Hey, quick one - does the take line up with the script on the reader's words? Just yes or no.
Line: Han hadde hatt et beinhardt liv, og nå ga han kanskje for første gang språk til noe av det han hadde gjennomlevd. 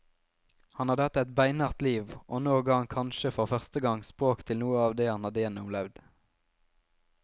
yes